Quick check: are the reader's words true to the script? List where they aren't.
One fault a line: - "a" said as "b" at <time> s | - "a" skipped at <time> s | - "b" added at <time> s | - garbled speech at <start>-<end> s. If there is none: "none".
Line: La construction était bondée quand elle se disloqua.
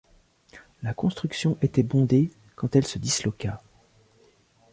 none